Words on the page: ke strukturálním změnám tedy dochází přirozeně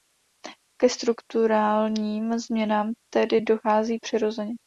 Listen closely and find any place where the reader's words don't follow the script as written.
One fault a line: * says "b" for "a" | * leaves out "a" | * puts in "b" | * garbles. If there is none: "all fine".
all fine